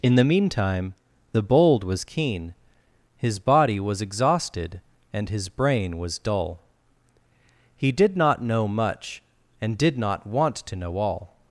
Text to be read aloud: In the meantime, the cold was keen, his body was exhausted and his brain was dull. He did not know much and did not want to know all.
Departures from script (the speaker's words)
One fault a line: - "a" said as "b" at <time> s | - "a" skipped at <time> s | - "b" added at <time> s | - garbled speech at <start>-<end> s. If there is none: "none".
- "cold" said as "bold" at 1.4 s